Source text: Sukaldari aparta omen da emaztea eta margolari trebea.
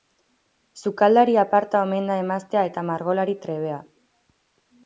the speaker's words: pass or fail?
pass